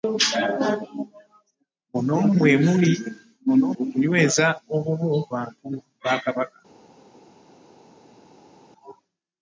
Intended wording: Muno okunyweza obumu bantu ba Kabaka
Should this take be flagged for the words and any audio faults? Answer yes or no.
no